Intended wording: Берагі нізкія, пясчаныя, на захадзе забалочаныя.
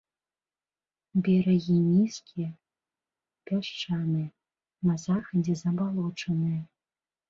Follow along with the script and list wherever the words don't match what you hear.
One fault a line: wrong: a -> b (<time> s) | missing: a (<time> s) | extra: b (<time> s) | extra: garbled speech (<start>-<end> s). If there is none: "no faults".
no faults